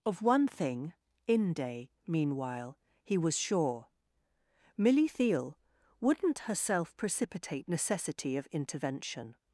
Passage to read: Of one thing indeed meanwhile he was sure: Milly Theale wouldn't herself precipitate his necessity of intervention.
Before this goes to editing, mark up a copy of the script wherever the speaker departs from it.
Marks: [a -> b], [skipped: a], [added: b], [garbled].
Of one thing [indeed -> inde] meanwhile he was sure: Milly Theale wouldn't herself precipitate [skipped: his] necessity of intervention.